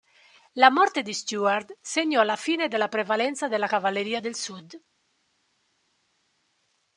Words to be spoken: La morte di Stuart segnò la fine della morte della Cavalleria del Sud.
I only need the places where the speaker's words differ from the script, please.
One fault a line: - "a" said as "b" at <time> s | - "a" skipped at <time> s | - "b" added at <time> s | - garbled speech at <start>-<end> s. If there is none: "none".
- "morte" said as "prevalenza" at 2.9 s